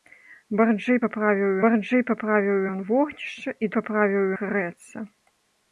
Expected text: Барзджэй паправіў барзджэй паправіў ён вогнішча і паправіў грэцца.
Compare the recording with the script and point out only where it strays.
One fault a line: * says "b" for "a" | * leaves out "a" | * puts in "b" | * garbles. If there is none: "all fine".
all fine